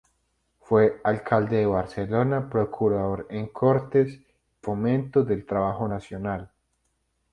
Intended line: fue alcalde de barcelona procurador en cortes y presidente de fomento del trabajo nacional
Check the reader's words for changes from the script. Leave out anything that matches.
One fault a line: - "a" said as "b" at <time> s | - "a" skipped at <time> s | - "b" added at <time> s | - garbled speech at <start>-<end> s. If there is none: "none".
- "y presidente de" skipped at 4.2 s